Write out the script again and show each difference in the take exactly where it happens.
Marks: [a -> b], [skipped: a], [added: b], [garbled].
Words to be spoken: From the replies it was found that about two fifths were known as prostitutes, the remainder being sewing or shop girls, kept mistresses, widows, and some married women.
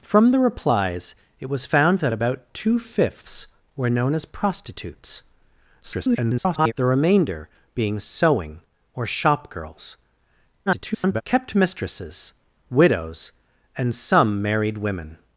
From the replies it was found that about two fifths were known as prostitutes, [garbled] the remainder being sewing or shop girls, [garbled] kept mistresses, widows, and some married women.